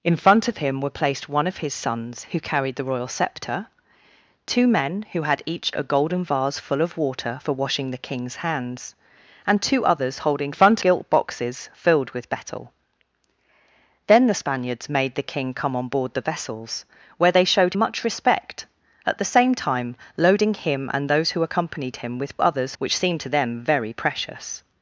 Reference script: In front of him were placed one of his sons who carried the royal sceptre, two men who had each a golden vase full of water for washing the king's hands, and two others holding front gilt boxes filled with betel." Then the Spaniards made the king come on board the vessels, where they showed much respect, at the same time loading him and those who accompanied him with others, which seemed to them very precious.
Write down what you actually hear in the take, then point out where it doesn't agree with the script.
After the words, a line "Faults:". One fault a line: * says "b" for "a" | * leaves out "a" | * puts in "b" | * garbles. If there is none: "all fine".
In front of him were placed one of his sons who carried the royal sceptre, two men who had each a golden vase full of water for washing the king's hands, and two others holding front gilt boxes filled with betel." Then the Spaniards made the king come on board the vessels, where they showed much respect, at the same time loading him and those who accompanied him with others, which seemed to them very precious.
Faults:
all fine